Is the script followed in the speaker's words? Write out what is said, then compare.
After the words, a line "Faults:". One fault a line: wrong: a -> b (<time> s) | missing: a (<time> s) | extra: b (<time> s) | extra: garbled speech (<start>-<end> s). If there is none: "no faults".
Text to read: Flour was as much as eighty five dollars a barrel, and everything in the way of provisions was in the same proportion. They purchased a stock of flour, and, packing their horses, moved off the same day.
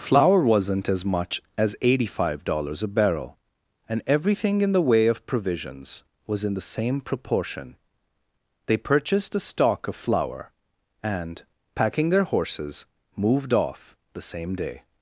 Flour wasn't as much as eighty five dollars a barrel, and everything in the way of provisions was in the same proportion. They purchased a stock of flour, and, packing their horses, moved off the same day.
Faults:
wrong: was -> wasn't (0.4 s)